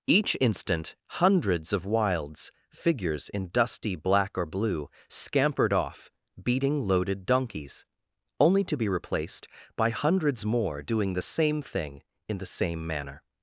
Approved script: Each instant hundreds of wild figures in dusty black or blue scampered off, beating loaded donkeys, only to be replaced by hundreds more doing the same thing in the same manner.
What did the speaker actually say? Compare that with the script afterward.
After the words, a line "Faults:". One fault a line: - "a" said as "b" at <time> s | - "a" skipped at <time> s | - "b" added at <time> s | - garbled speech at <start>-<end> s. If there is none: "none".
Each instant hundreds of wilds figures in dusty black or blue scampered off, beating loaded donkeys, only to be replaced by hundreds more doing the same thing in the same manner.
Faults:
- "wild" said as "wilds" at 1.9 s